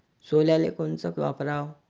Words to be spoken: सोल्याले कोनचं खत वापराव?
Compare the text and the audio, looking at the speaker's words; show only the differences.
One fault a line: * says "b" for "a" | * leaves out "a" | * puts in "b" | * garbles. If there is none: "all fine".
* leaves out "खत"